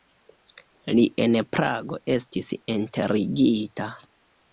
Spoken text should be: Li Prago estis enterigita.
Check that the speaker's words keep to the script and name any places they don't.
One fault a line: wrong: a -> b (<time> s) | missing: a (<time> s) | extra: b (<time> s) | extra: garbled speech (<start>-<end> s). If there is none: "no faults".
extra: en (1.2 s)